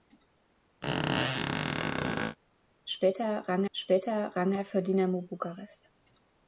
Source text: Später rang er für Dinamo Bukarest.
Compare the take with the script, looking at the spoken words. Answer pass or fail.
fail